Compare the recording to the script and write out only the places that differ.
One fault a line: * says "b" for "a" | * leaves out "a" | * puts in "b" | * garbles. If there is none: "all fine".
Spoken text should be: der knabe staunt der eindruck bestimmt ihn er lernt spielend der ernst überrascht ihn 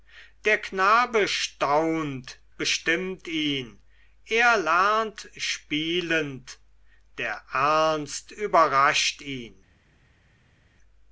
* leaves out "der eindruck"